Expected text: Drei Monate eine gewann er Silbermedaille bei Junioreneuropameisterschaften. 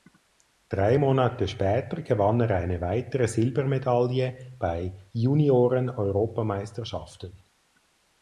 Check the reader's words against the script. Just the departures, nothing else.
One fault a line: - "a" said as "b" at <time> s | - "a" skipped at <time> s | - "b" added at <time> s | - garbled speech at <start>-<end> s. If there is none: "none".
- "eine" said as "später" at 1.5 s
- "eine weitere" added at 2.5 s